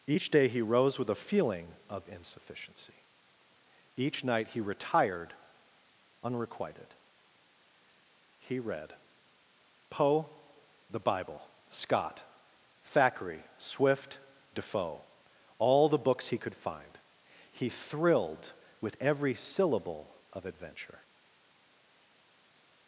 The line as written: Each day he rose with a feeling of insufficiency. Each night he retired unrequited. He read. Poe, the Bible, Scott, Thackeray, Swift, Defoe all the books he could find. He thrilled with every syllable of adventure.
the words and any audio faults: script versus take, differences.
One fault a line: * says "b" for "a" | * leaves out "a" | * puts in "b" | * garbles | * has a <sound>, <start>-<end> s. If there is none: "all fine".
all fine